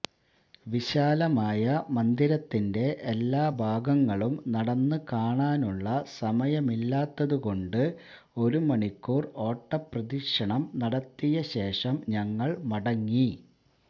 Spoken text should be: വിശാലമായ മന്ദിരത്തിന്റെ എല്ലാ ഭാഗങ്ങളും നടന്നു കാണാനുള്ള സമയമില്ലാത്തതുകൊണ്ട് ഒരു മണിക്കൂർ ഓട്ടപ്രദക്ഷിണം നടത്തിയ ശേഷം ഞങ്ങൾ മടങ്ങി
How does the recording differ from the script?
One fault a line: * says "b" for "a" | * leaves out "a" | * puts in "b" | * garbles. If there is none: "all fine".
all fine